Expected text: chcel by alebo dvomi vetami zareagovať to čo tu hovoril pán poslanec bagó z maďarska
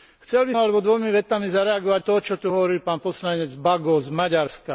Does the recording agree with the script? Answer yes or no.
yes